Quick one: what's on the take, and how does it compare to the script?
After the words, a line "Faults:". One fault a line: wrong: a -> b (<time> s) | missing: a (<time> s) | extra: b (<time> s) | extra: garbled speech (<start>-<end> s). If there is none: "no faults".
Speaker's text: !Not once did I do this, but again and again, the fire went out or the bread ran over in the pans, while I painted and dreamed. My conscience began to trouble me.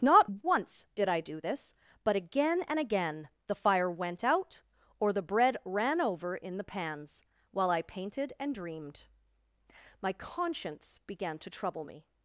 !Not once did I do this, but again and again, the fire went out or the bread ran over in the pans, while I painted and dreamed. My conscience began to trouble me.
Faults:
no faults